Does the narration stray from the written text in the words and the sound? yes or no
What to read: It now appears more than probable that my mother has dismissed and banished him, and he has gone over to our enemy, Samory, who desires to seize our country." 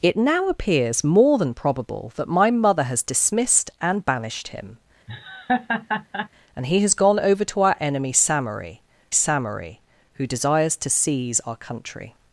yes